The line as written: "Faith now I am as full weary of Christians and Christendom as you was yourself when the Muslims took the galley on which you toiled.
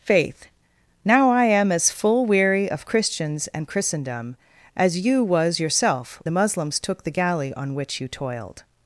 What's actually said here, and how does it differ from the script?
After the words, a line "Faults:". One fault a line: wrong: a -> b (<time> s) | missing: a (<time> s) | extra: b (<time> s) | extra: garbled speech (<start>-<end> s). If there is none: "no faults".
"Faith now I am as full weary of Christians and Christendom as you was yourself the Muslims took the galley on which you toiled.
Faults:
missing: when (6.2 s)